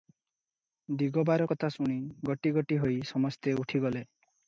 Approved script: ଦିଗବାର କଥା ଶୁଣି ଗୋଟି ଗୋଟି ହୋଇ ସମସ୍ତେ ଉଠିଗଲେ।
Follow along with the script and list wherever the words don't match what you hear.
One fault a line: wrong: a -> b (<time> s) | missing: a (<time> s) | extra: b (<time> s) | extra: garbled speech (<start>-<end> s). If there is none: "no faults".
no faults